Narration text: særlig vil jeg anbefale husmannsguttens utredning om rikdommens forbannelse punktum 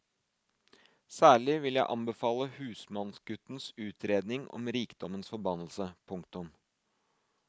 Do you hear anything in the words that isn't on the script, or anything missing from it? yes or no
no